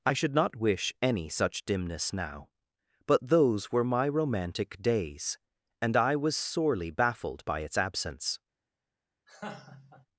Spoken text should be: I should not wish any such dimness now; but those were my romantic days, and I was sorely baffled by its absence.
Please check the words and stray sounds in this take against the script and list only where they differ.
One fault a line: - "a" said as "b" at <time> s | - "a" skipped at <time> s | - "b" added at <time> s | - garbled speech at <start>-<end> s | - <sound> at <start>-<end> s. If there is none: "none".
- laugh at 9.3-10.1 s